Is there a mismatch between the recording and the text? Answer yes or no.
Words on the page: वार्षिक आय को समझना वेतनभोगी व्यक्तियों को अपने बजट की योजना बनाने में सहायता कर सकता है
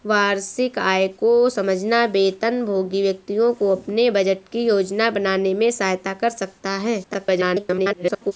yes